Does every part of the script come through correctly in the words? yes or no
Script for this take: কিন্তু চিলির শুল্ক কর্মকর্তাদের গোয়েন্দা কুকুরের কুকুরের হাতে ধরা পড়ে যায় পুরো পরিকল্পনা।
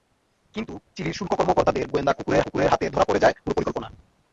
yes